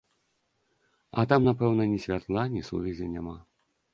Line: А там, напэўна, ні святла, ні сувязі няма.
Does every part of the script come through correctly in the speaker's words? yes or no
yes